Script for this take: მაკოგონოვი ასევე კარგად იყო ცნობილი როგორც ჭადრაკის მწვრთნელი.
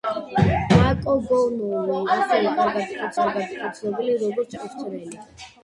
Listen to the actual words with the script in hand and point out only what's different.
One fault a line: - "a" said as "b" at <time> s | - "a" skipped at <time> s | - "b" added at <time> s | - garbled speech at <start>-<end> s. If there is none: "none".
- "კარგად იყო" added at 3.2 s
- "ჭადრაკის" skipped at 4.6 s